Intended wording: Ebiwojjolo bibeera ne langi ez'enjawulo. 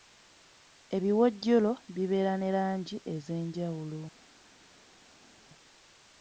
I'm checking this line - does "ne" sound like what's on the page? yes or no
yes